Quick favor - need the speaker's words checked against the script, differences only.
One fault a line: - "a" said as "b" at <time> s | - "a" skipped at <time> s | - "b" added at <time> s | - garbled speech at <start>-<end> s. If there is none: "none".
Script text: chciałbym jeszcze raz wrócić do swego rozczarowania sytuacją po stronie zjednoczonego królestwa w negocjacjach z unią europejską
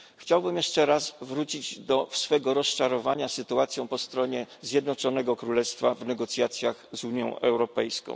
none